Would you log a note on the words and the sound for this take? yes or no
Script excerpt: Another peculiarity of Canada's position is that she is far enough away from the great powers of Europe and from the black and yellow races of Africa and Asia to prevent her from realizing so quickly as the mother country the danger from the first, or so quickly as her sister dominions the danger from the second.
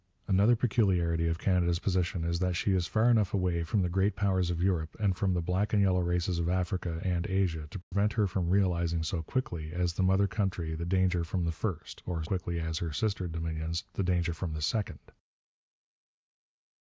yes